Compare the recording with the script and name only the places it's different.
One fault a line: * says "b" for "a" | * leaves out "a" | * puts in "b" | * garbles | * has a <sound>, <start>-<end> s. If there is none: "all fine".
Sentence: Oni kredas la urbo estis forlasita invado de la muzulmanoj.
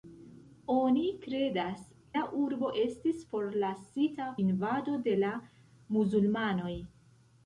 all fine